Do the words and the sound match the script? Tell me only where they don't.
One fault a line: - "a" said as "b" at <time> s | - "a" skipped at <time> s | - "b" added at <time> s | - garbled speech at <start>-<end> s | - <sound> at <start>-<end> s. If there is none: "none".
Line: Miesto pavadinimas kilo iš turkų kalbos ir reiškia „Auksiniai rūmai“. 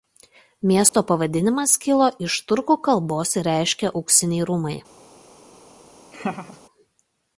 - dropout at 0.9-0.9 s
- laugh at 6.1-6.6 s